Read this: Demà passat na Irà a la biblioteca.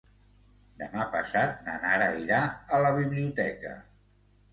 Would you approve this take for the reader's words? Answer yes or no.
no